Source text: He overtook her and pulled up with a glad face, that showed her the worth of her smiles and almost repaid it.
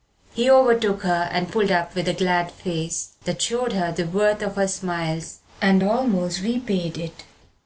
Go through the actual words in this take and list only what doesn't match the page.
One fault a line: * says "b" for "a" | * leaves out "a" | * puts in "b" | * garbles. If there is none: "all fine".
all fine